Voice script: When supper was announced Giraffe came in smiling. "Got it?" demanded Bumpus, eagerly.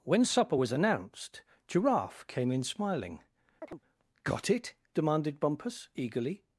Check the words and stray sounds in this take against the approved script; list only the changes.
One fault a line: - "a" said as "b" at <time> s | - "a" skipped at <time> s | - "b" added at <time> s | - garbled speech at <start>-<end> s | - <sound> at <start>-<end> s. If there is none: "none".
- chirp at 3.6-3.8 s